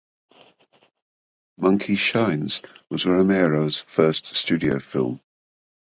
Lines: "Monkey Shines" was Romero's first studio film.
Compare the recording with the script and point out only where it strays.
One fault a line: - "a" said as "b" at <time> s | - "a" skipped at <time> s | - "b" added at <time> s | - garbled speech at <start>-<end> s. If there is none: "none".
none